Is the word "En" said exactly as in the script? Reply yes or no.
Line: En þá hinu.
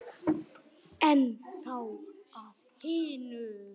yes